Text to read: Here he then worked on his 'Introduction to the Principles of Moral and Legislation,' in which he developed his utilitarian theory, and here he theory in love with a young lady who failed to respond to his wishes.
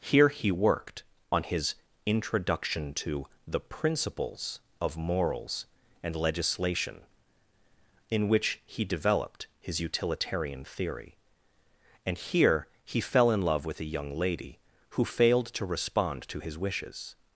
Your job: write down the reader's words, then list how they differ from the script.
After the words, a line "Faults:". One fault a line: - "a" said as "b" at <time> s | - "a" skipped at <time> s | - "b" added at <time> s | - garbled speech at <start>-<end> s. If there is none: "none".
Here he worked on his 'Introduction to the Principles of Morals and Legislation,' in which he developed his utilitarian theory, and here he fell in love with a young lady who failed to respond to his wishes.
Faults:
- "then" skipped at 0.5 s
- "Moral" said as "Morals" at 5.0 s
- "theory" said as "fell" at 13.0 s